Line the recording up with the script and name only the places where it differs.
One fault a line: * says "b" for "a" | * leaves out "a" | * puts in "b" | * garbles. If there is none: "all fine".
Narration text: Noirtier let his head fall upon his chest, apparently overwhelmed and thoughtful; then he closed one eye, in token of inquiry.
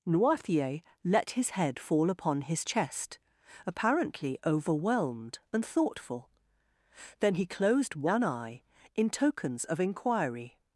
* says "tokens" for "token"